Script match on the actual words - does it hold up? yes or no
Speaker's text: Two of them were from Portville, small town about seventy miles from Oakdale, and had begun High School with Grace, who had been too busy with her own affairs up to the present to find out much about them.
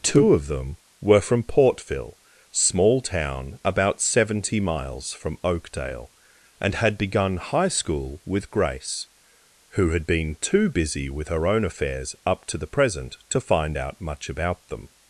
yes